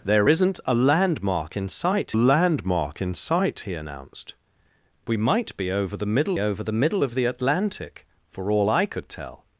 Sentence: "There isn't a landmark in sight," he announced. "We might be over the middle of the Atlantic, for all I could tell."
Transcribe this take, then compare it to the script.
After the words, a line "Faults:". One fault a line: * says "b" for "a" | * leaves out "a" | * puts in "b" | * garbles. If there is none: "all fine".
"There isn't a landmark in sight landmark in sight," he announced. "We might be over the middle over the middle of the Atlantic, for all I could tell."
Faults:
* puts in "landmark in sight"
* puts in "over the middle"